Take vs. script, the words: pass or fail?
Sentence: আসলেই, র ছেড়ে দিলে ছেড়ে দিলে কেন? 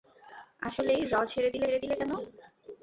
pass